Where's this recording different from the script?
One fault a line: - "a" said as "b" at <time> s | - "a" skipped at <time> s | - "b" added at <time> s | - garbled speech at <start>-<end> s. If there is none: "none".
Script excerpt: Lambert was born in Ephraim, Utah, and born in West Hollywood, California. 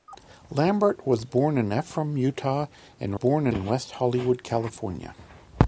none